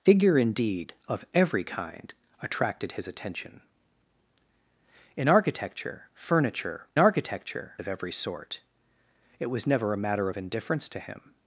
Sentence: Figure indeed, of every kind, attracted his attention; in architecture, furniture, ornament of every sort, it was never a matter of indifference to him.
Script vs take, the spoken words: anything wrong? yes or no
yes